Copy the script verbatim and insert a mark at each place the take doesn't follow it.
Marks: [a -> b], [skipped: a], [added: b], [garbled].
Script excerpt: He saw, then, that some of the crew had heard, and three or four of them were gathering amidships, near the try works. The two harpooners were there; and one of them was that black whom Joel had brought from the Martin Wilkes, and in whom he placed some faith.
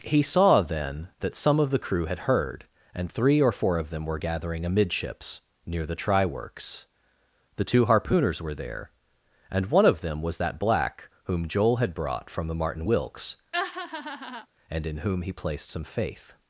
He saw, then, that some of the crew had heard, and three or four of them were gathering amidships, near the try works. The two harpooners were there; and one of them was that black whom Joel had brought from the Martin Wilkes, and in whom he placed some faith.